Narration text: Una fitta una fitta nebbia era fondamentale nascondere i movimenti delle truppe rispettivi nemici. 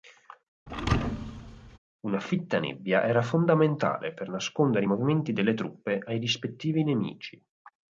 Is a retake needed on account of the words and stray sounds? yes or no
yes